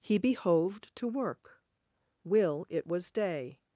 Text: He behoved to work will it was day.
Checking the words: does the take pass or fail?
pass